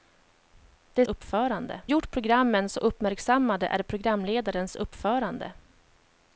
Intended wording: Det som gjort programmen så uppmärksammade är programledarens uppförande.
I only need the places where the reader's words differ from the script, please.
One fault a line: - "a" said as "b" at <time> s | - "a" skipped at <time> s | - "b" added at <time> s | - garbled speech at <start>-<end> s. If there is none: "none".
- "som" said as "uppförande" at 1.0 s